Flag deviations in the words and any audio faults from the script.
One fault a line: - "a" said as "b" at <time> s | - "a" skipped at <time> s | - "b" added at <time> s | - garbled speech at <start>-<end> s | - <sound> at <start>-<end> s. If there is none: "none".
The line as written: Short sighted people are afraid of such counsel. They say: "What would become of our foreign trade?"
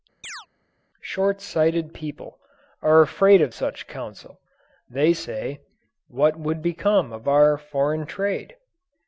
- chirp at 0.2-0.5 s